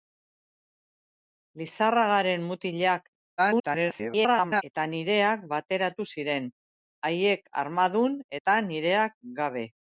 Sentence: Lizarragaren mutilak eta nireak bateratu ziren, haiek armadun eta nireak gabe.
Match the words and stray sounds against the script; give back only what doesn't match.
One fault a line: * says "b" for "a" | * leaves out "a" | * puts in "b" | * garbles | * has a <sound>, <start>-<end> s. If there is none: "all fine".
* garbles